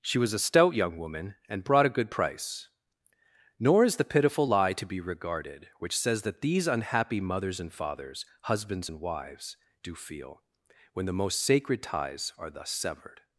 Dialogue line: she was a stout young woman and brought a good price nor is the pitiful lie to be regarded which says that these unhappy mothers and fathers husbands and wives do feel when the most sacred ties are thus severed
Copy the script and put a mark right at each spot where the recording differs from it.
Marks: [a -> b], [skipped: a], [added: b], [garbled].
she was a stout young woman and brought a good price nor is the pitiful lie to be regarded which says that these unhappy mothers and fathers husbands and wives do feel when the most sacred ties are thus severed